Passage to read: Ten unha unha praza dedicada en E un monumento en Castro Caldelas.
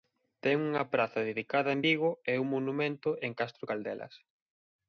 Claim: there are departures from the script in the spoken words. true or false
true